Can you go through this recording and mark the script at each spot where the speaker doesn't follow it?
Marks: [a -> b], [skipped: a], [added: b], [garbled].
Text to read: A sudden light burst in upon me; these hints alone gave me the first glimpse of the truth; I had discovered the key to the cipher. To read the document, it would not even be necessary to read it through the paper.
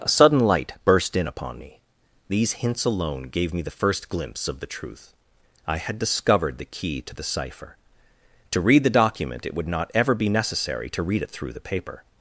A sudden light burst in upon me; these hints alone gave me the first glimpse of the truth; I had discovered the key to the cipher. To read the document, it would not [even -> ever] be necessary to read it through the paper.